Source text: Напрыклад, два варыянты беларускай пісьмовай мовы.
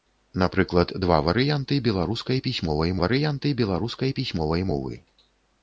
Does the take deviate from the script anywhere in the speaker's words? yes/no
yes